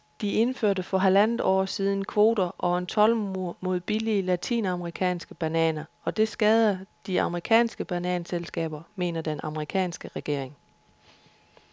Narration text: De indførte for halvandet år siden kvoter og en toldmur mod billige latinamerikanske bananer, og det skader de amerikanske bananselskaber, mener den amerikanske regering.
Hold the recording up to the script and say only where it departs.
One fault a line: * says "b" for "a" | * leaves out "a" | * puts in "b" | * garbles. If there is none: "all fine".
all fine